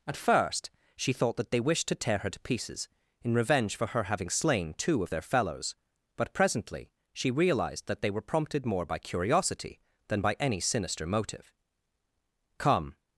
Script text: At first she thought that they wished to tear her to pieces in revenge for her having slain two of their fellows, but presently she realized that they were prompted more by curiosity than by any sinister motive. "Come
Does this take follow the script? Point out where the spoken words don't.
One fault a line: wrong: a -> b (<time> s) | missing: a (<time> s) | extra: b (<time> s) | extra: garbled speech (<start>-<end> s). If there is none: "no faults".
no faults